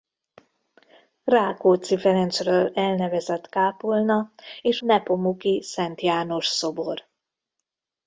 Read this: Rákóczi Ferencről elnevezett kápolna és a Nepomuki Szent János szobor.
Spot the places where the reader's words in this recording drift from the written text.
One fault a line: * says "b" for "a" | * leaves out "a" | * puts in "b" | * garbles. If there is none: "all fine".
* leaves out "a"